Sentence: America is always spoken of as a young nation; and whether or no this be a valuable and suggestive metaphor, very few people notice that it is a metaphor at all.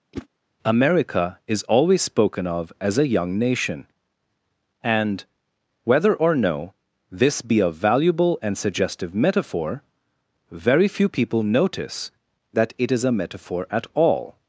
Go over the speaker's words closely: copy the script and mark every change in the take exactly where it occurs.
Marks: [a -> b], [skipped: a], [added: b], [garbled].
America is always spoken of as a young nation; and whether or no this be a valuable and suggestive metaphor, very few people notice that it is a metaphor at all.